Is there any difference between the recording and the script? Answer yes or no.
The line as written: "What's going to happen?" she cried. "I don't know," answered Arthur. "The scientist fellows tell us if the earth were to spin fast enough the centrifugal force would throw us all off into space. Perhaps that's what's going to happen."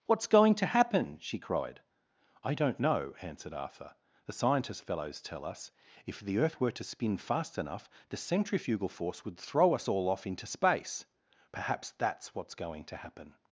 no